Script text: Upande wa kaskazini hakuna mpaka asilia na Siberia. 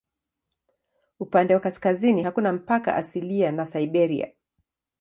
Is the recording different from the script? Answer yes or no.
no